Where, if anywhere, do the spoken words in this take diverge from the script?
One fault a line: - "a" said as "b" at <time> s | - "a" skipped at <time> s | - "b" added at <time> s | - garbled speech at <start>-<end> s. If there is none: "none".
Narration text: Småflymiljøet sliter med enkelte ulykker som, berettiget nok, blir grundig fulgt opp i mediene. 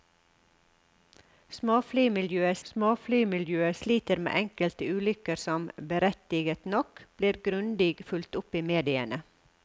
- "småflymiljøet" added at 2.7 s